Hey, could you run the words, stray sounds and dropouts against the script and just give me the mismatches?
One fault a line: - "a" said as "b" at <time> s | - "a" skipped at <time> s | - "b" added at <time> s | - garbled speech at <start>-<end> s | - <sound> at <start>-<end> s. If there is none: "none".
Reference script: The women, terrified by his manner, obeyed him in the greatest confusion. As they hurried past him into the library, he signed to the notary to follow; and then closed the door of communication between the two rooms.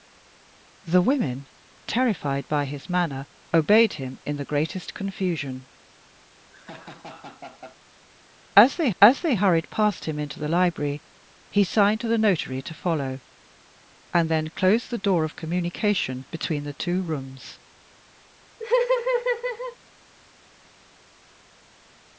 - laugh at 6.5-7.8 s
- "as they" added at 9.0 s
- laugh at 18.6-19.8 s